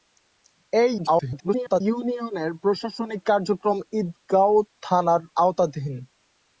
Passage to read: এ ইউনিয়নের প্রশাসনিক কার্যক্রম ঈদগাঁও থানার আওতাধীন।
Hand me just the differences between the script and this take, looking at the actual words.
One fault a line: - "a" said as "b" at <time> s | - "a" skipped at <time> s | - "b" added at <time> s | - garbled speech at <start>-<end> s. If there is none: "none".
- garbled speech at 1.0-1.8 s